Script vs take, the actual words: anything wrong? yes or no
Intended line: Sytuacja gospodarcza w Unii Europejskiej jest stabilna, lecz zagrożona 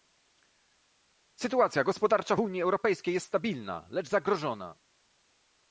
yes